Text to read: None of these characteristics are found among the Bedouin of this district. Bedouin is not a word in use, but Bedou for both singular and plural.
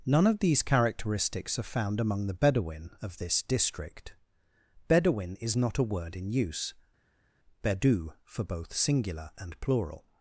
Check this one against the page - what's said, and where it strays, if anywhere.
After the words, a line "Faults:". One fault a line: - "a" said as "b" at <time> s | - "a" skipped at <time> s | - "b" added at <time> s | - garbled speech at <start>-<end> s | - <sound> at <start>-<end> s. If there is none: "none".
None of these characteristics are found among the Bedouin of this district. Bedouin is not a word in use, Bedou for both singular and plural.
Faults:
- "but" skipped at 6.7 s